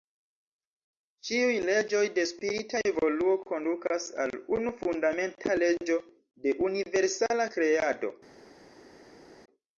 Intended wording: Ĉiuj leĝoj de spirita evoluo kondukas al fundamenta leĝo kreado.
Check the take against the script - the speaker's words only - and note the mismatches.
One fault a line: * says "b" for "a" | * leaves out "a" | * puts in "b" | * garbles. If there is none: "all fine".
* puts in "unu"
* puts in "de universala"